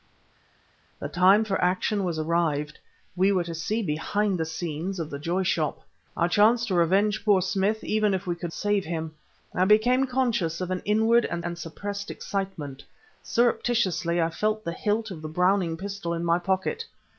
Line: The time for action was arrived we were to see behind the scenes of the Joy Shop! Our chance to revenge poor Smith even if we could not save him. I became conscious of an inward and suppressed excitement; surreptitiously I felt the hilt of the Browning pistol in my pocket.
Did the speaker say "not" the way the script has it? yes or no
no